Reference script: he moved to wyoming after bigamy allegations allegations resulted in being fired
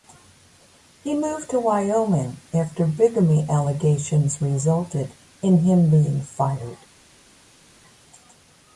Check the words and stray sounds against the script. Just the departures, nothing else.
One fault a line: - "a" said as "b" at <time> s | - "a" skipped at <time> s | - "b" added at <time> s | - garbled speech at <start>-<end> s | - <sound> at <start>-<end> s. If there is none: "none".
- "allegations" skipped at 4.4 s
- "him" added at 5.6 s